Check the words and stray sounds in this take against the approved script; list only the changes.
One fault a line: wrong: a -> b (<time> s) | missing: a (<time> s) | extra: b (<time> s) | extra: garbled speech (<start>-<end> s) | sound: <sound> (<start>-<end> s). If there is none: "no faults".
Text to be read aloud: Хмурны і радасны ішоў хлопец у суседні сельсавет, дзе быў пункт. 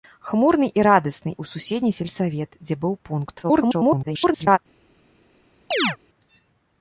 missing: ішоў хлопец (1.3 s)
extra: garbled speech (3.4-4.6 s)
sound: chirp (5.7-6.0 s)